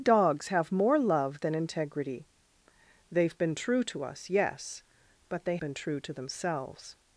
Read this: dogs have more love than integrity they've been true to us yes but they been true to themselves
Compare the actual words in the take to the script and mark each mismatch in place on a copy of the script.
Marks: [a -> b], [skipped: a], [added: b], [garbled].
dogs have more love than integrity they've been true to us yes but they been true to themselves